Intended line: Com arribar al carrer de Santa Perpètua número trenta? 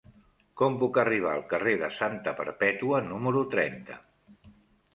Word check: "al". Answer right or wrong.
right